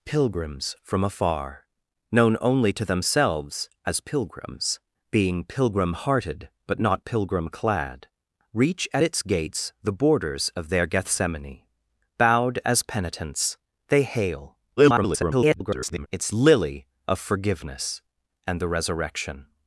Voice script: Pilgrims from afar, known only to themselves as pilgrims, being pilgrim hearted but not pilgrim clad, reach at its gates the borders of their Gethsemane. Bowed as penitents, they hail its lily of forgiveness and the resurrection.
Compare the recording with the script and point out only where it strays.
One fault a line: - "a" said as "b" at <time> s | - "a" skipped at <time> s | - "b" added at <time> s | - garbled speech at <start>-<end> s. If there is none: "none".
- garbled speech at 14.8-16.1 s